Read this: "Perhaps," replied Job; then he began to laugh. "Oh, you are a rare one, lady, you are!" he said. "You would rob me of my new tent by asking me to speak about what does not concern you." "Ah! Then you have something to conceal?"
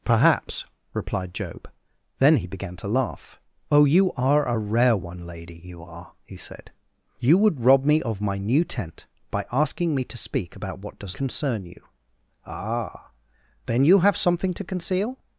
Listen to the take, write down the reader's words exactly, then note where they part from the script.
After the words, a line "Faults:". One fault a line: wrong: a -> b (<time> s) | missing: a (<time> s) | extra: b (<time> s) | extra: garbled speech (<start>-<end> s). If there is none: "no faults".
"Perhaps," replied Job; then he began to laugh. "Oh, you are a rare one, lady, you are!" he said. "You would rob me of my new tent by asking me to speak about what does concern you." "Ah! Then you have something to conceal?"
Faults:
missing: not (11.2 s)